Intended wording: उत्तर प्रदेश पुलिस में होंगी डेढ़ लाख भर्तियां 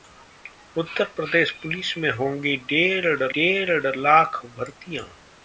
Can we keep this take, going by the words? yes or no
no